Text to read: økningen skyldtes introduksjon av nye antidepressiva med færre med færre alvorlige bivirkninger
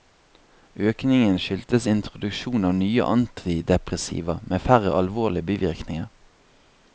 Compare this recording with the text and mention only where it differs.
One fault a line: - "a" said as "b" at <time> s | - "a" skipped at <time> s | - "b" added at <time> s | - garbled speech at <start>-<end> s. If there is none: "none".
- "med færre" skipped at 4.9 s